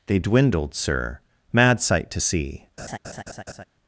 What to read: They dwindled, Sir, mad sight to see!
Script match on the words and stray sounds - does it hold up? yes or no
no